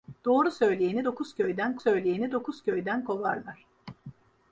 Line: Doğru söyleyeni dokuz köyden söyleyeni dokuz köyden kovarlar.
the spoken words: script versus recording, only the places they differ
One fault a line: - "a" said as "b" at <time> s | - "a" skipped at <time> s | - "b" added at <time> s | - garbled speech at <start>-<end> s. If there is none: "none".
none